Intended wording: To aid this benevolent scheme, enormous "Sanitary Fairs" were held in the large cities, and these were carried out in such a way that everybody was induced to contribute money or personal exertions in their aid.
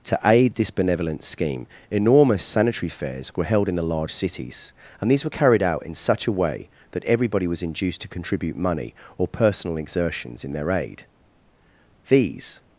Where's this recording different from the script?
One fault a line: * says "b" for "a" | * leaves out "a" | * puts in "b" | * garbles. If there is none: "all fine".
* puts in "These"